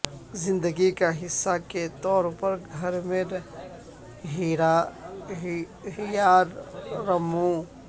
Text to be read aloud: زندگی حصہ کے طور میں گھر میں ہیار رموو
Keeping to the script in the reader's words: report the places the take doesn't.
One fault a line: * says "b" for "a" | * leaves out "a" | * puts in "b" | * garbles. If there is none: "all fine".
* puts in "کا"
* says "پر" for "میں"